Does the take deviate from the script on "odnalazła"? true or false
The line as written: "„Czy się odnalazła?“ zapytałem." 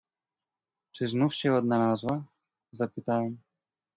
false